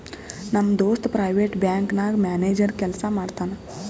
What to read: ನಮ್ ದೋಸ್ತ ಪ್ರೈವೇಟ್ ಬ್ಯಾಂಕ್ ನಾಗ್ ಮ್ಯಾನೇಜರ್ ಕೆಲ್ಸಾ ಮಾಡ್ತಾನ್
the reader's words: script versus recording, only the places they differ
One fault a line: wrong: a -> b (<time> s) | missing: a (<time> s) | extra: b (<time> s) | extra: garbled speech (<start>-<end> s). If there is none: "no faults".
no faults